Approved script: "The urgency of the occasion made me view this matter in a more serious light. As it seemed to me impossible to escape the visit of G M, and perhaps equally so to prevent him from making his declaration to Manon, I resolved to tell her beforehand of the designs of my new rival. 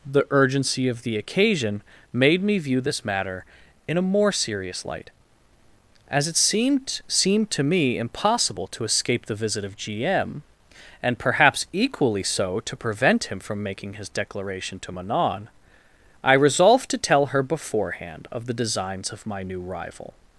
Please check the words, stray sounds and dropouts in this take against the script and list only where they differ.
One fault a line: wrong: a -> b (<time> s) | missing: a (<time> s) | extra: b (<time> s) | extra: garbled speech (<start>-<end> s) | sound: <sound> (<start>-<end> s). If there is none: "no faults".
extra: seemed (7.1 s)